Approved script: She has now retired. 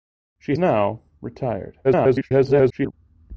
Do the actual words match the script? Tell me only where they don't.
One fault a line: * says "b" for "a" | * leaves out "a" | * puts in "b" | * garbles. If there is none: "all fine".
* leaves out "has"
* garbles